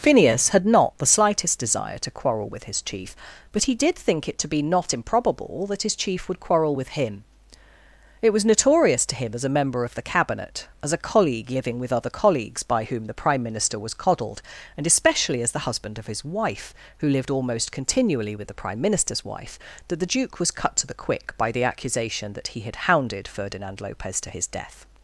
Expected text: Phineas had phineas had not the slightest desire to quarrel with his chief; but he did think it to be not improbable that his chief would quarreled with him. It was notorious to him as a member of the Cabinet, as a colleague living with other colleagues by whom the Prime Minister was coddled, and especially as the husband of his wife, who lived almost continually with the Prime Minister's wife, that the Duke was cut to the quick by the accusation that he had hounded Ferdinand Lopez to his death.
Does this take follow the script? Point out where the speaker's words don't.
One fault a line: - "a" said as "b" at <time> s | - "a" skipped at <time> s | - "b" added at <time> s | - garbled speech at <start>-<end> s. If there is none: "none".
- "phineas had" skipped at 0.7 s
- "quarreled" said as "quarrel" at 6.4 s